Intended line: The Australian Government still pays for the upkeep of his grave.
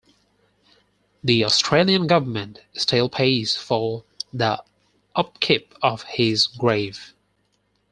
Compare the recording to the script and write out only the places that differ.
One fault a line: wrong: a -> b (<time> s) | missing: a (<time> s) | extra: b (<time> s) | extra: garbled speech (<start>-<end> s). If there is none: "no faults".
no faults